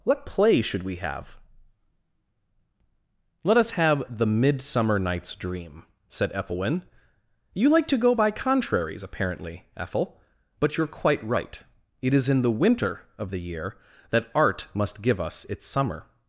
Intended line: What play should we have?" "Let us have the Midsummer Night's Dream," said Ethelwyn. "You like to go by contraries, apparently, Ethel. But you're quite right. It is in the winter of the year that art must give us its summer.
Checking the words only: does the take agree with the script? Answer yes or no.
yes